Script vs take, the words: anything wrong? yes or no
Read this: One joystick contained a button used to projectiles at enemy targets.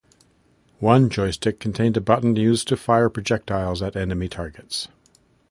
yes